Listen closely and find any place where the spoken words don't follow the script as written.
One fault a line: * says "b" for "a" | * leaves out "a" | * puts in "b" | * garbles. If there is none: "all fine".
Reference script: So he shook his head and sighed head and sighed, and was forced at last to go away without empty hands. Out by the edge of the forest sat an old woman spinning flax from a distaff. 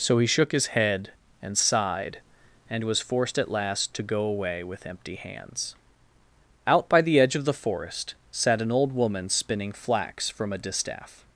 * leaves out "head"
* leaves out "sighed and"
* says "with" for "without"